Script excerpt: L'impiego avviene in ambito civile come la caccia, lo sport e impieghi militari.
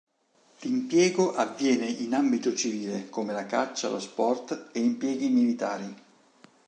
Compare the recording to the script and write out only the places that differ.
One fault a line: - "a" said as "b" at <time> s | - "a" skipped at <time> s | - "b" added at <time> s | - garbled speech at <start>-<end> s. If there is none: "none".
none